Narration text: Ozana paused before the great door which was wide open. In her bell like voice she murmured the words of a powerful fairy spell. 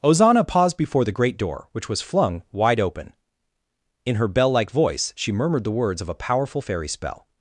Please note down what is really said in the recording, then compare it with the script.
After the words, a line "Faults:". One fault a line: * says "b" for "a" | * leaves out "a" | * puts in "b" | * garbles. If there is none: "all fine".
Ozana paused before the great door which was flung wide open. In her bell like voice she murmured the words of a powerful fairy spell.
Faults:
* puts in "flung"